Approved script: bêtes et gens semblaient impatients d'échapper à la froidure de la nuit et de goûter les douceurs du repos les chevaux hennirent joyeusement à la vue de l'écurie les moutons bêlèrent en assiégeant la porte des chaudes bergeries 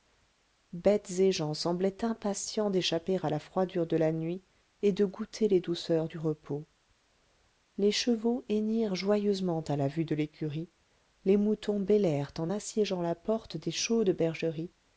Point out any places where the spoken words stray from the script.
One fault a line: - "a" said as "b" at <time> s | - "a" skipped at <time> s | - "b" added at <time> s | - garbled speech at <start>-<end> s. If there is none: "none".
none